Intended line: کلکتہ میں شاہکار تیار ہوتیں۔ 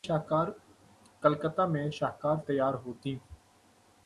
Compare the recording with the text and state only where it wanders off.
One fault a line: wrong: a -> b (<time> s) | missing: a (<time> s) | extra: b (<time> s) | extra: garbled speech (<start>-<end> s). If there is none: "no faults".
no faults